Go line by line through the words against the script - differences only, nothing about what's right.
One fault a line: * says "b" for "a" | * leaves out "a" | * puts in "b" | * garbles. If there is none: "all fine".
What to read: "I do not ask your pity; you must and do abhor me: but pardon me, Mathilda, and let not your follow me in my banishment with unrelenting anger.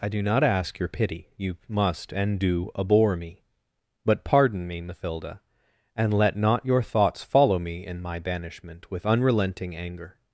* puts in "thoughts"